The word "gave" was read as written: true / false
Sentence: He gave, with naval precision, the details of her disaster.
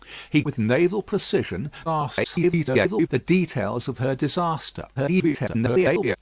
false